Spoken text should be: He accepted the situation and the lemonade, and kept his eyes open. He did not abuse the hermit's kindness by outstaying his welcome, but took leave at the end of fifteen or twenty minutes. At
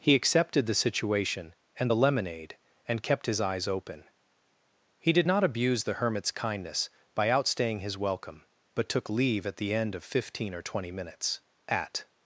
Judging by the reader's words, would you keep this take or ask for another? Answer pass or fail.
pass